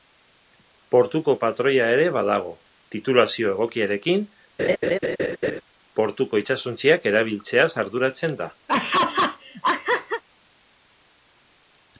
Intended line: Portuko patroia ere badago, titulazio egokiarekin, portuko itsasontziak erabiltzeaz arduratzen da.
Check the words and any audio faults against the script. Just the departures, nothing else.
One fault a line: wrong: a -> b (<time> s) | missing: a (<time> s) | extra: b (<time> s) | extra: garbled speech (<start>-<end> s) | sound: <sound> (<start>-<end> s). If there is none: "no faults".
sound: laugh (4.6-5.6 s)
sound: laugh (8.7-10.2 s)